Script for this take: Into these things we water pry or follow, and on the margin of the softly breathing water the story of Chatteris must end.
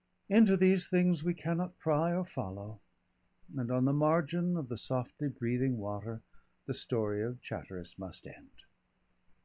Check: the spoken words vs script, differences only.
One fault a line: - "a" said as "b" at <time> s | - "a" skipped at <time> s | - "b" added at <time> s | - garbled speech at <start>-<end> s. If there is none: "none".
- "water" said as "cannot" at 1.3 s